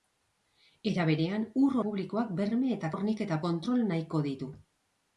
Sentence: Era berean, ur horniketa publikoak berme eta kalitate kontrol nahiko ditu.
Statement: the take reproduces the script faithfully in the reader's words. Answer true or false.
false